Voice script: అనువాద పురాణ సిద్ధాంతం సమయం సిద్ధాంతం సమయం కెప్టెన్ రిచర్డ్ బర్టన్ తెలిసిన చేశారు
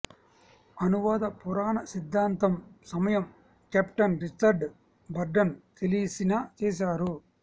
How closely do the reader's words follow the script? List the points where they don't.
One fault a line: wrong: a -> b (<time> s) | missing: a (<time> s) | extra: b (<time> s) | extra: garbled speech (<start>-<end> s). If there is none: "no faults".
missing: సిద్ధాంతం సమయం (3.3 s)